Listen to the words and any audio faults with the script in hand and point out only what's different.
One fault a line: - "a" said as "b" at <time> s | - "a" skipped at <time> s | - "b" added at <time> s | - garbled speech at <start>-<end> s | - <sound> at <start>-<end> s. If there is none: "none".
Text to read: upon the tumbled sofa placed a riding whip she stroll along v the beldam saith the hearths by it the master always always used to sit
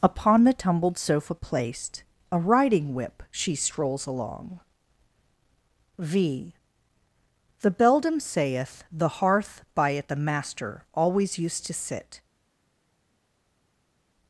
- "stroll" said as "strolls" at 3.5 s
- "hearths" said as "hearth" at 9.2 s
- "always" skipped at 11.4 s